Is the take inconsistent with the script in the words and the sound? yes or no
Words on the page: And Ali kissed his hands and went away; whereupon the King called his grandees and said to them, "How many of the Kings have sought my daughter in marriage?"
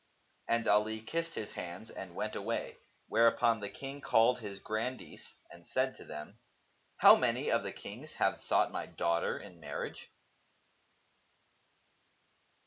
no